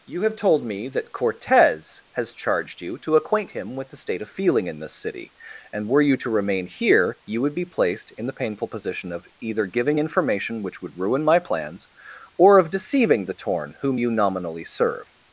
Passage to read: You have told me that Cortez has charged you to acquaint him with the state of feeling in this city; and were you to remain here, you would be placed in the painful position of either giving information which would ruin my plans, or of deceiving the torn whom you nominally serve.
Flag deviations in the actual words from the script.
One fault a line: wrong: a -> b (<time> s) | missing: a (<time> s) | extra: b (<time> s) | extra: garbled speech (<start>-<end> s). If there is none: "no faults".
no faults